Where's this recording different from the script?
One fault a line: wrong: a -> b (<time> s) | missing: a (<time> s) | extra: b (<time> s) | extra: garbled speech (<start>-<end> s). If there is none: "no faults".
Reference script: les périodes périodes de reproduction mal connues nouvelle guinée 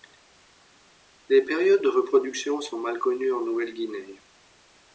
missing: périodes (1.8 s)
extra: sont (2.6 s)
extra: en (3.3 s)